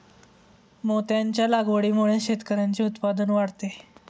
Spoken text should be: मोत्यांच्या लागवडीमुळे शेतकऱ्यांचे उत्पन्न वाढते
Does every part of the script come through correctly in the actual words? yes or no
yes